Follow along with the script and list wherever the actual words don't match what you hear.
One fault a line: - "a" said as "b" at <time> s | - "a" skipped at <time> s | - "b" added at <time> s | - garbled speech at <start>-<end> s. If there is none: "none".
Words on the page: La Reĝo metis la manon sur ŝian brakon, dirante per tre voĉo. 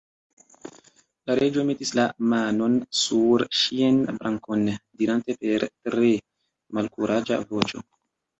- "malkuraĝa" added at 6.8 s